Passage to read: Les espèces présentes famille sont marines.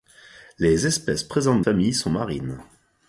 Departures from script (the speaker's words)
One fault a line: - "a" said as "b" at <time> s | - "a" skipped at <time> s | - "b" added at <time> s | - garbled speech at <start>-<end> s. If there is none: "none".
none